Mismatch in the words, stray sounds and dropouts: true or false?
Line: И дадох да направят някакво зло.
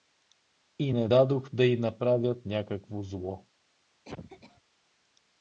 true